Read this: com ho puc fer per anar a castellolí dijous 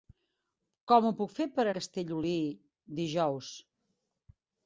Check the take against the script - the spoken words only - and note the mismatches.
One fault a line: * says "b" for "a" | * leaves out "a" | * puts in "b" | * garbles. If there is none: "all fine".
* leaves out "anar"